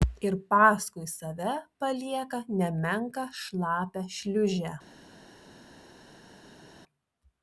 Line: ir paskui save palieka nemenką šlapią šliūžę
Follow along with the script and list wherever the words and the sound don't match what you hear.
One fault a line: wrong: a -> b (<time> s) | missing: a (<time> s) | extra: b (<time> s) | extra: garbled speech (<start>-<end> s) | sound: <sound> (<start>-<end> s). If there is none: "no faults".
no faults